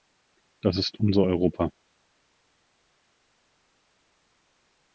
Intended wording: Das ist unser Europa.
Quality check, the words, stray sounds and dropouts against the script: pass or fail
pass